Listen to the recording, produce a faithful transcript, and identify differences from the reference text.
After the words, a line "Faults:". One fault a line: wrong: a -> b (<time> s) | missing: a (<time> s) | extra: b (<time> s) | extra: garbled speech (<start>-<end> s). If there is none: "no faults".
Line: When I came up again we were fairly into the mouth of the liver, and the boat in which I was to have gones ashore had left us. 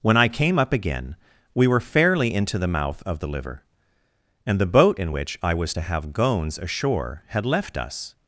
When I came up again we were fairly into the mouth of the liver, and the boat in which I was to have gones ashore had left us.
Faults:
no faults